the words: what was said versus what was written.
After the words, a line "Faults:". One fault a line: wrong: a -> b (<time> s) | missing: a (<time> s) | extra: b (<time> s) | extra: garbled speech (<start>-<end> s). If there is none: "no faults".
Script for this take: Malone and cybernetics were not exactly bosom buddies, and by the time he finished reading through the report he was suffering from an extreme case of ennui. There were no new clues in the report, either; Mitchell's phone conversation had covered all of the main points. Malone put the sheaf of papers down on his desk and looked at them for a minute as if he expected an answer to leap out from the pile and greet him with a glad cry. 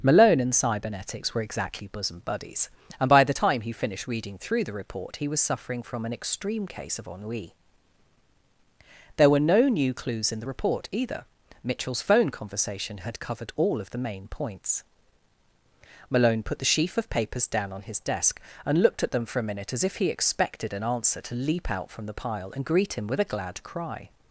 Malone and cybernetics were exactly bosom buddies, and by the time he finished reading through the report he was suffering from an extreme case of ennui. There were no new clues in the report, either; Mitchell's phone conversation had covered all of the main points. Malone put the sheaf of papers down on his desk and looked at them for a minute as if he expected an answer to leap out from the pile and greet him with a glad cry.
Faults:
missing: not (1.4 s)